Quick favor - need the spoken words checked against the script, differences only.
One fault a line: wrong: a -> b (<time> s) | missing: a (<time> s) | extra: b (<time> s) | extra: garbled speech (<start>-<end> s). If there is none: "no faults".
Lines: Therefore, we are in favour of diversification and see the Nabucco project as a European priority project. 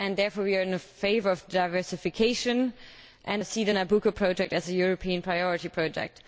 no faults